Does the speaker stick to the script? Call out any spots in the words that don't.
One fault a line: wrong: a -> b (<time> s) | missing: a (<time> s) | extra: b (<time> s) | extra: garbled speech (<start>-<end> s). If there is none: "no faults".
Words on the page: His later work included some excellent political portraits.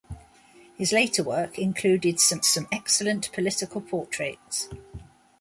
extra: some (2.4 s)